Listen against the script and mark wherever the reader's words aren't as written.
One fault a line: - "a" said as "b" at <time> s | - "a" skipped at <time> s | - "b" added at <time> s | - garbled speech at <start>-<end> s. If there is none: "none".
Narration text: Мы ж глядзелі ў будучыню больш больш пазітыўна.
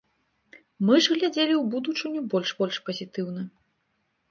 none